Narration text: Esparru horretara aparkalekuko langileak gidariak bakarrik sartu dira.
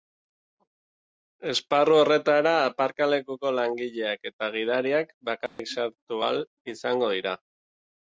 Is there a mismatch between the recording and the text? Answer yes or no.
yes